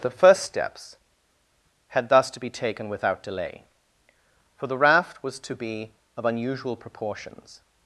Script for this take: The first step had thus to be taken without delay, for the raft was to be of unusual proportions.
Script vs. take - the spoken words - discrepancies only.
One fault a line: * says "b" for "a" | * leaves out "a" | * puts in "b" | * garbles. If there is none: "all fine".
* says "steps" for "step"